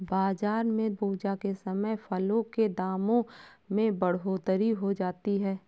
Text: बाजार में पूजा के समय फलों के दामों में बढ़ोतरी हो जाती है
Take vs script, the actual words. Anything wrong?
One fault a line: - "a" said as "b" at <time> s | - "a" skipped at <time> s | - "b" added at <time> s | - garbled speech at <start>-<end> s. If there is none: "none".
none